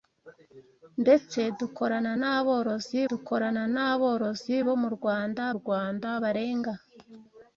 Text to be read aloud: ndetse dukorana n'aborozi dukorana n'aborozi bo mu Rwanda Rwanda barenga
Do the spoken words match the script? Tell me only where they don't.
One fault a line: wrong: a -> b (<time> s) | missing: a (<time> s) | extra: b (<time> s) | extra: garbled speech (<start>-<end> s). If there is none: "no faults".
no faults